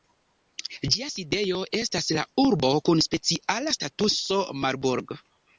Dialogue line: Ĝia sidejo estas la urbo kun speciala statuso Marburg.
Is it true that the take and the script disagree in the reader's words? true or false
false